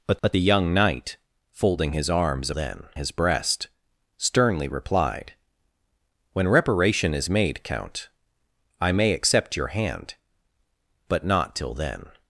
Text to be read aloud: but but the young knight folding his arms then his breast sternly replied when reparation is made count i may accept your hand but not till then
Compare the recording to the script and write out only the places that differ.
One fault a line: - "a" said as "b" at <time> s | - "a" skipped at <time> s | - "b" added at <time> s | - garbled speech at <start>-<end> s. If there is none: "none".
none